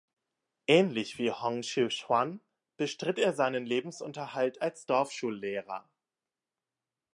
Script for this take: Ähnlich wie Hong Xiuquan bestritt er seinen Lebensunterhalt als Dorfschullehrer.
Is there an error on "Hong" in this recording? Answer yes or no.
no